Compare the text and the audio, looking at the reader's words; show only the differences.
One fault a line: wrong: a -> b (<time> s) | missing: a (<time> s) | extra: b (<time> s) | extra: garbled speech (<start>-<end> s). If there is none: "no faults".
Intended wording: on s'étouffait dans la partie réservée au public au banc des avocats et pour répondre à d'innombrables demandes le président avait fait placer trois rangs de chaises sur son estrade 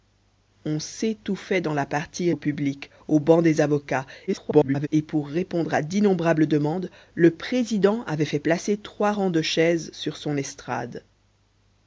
missing: réservée (2.3 s)
extra: garbled speech (4.3-4.9 s)